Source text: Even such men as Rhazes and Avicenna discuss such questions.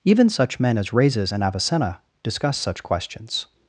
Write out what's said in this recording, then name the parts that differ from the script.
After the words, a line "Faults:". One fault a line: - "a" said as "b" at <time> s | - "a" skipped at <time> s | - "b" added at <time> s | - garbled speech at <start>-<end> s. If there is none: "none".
Even such men as Rhazes and Avicenna discuss such questions.
Faults:
none